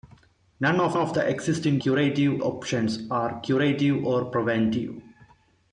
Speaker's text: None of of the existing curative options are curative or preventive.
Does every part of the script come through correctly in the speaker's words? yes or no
yes